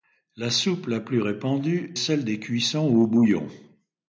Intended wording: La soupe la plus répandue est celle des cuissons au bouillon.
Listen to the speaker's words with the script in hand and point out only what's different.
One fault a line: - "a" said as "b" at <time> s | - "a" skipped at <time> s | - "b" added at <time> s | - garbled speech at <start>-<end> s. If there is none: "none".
- "est" skipped at 1.9 s